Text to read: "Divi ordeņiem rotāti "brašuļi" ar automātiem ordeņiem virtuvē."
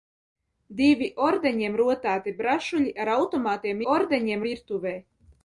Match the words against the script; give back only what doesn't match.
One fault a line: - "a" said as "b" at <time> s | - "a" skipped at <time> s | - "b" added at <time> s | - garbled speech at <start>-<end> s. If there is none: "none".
none